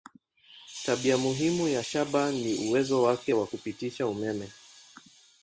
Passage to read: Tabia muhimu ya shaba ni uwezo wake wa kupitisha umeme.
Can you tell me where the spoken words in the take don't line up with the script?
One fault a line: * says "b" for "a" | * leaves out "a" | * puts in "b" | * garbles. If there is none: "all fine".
all fine